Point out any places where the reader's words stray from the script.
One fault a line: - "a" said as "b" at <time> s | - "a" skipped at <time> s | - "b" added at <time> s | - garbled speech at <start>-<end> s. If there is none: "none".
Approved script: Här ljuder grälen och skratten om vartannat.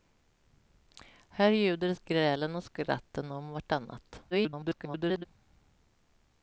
- garbled speech at 4.3-5.2 s